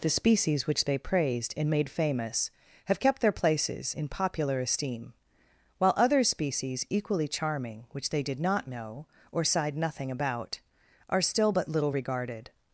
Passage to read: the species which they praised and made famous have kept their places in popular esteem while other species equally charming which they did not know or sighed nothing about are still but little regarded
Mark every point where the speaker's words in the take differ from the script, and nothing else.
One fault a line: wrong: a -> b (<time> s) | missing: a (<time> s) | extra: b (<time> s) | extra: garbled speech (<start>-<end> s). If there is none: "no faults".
no faults